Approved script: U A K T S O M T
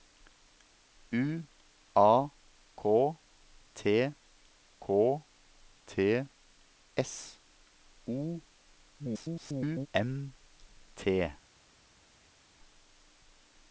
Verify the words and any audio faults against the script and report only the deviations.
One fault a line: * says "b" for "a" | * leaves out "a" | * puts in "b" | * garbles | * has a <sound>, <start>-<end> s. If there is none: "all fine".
* puts in "K T"
* garbles